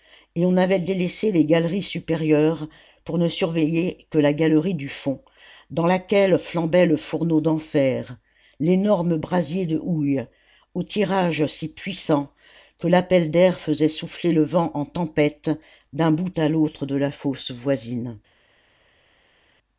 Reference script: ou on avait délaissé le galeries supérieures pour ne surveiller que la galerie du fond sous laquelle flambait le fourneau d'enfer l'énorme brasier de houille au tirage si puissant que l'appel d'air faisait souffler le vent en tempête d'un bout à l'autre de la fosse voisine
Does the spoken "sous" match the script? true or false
false